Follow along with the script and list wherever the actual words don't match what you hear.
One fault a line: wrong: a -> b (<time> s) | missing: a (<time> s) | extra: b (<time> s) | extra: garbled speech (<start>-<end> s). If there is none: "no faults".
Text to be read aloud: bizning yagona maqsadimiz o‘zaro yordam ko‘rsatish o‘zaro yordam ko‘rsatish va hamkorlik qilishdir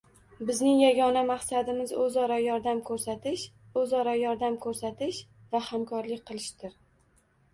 no faults